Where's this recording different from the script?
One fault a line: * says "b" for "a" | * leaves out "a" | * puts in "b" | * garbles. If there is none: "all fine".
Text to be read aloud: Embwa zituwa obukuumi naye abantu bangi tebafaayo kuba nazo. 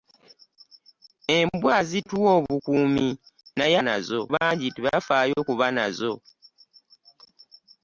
* says "nazo" for "abantu"